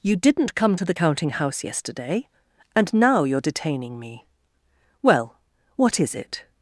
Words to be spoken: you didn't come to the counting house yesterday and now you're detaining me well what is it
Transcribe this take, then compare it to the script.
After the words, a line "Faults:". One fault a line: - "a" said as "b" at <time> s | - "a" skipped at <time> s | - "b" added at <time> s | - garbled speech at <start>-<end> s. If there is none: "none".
you didn't come to the counting house yesterday and now you're detaining me well what is it
Faults:
none